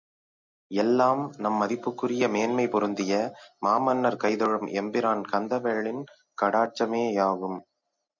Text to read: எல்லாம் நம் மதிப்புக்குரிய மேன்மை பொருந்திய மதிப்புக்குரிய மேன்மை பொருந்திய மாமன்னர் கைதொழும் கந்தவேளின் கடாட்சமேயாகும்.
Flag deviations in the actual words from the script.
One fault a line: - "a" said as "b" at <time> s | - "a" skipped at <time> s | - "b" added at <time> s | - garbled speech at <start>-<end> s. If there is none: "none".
- "மதிப்புக்குரிய மேன்மை பொருந்திய" skipped at 3.1 s
- "எம்பிரான்" added at 4.8 s